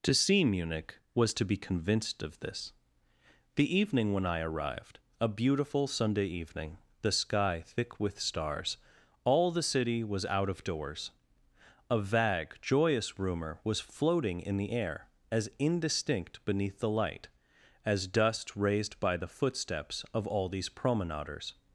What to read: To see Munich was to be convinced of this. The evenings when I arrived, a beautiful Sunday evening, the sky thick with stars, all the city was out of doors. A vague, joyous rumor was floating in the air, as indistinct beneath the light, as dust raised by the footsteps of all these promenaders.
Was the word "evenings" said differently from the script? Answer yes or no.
yes